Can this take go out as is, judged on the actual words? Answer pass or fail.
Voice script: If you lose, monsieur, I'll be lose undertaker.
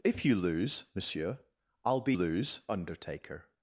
pass